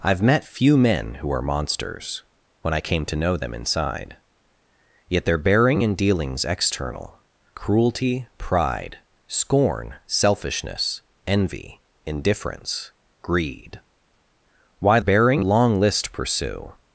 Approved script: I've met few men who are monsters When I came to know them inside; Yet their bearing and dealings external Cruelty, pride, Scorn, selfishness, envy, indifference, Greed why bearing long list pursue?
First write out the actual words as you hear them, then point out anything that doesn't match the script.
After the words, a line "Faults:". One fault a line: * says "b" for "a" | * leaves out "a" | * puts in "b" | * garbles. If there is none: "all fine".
I've met few men who are monsters When I came to know them inside; Yet their bearing and dealings external Cruelty, pride, Scorn, selfishness, envy, indifference, Greed why bearing long list pursue?
Faults:
all fine